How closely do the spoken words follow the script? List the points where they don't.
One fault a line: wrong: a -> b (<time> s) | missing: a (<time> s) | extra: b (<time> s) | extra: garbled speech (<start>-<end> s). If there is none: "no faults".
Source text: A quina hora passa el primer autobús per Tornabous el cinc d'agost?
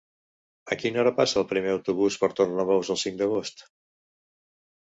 no faults